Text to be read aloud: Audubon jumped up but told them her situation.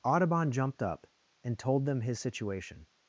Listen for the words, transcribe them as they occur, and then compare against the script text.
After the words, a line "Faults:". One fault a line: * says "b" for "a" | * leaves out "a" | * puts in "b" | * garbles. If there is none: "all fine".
Audubon jumped up and told them his situation.
Faults:
* says "and" for "but"
* says "his" for "her"